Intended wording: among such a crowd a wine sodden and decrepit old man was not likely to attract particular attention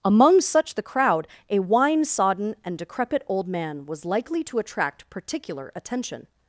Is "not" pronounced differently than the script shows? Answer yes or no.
yes